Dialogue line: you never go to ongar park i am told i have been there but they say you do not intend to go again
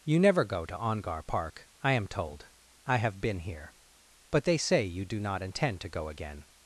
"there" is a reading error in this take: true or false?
true